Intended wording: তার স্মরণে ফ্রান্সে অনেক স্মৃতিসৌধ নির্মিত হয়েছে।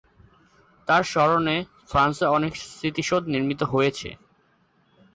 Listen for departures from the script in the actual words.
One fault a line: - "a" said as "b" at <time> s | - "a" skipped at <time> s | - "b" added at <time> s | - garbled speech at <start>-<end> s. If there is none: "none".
none